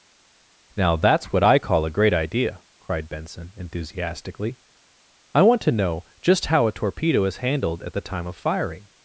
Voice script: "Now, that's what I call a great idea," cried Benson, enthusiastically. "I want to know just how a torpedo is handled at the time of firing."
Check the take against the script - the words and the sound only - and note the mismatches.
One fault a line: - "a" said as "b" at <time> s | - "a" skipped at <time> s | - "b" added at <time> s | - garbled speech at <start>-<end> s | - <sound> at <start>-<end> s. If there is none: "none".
none